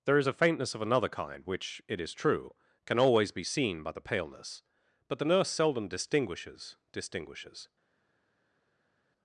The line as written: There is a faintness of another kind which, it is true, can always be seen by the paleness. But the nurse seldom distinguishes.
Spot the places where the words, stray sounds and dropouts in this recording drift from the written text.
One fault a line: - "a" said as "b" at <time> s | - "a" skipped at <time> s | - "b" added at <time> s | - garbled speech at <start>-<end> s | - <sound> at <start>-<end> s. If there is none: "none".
- "distinguishes" added at 6.9 s